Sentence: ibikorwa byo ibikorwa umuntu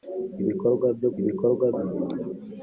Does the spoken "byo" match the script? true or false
true